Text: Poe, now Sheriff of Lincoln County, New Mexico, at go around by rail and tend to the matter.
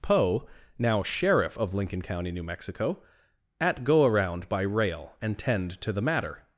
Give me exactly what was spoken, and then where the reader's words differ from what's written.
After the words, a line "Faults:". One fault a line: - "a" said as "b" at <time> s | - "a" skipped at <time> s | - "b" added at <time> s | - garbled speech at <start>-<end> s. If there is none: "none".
Poe, now Sheriff of Lincoln County, New Mexico, at go around by rail and tend to the matter.
Faults:
none